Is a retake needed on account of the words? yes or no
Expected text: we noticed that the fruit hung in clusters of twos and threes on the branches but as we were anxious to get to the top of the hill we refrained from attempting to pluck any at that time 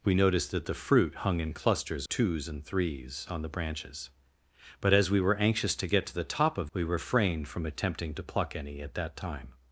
yes